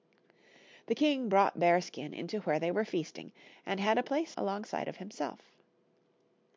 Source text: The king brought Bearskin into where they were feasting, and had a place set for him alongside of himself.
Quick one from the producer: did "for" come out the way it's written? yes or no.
no